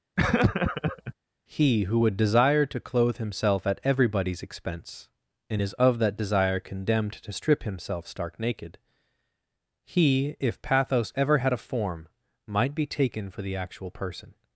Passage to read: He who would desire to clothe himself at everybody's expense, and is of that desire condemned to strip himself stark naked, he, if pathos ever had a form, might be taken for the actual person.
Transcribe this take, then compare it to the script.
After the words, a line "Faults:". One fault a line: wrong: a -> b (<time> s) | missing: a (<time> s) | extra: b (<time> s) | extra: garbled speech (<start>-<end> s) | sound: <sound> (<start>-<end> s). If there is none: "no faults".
He who would desire to clothe himself at everybody's expense, and is of that desire condemned to strip himself stark naked, he, if pathos ever had a form, might be taken for the actual person.
Faults:
sound: laugh (0.2-1.1 s)